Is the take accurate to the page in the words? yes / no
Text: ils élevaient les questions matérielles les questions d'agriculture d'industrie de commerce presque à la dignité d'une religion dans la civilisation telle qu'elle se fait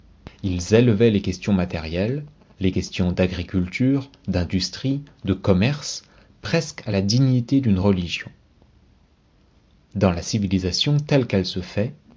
yes